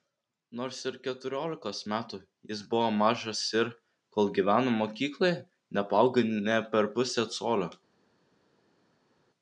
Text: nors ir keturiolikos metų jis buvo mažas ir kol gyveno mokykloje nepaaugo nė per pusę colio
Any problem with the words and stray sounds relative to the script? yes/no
no